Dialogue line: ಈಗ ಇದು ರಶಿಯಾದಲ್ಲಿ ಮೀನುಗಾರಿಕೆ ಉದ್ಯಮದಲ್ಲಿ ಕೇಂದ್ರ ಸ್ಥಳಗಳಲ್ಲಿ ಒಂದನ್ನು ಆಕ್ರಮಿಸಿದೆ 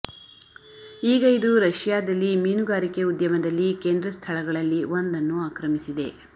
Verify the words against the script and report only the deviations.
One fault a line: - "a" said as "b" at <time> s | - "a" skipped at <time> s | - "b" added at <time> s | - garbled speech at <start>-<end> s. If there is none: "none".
none